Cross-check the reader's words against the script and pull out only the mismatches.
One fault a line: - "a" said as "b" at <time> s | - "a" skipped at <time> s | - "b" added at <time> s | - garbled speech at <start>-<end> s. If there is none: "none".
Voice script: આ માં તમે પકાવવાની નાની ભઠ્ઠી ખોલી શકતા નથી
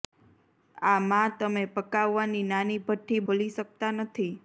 none